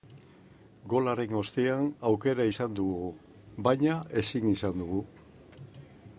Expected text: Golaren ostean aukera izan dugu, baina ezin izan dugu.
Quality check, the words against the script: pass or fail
pass